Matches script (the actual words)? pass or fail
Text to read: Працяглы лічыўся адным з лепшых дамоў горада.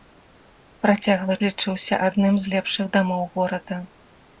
pass